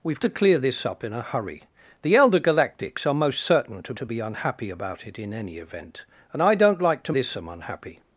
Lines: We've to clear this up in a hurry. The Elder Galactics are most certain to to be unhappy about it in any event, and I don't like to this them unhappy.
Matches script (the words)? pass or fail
pass